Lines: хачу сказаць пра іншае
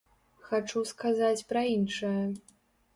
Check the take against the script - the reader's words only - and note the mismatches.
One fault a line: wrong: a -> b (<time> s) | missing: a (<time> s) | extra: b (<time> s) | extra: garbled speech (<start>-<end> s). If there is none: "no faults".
no faults